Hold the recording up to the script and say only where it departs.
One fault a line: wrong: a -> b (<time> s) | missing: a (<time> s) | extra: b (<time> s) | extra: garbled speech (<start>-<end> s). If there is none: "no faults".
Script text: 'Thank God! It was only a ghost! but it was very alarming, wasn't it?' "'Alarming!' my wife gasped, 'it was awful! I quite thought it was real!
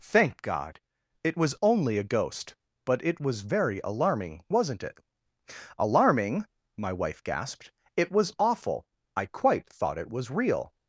no faults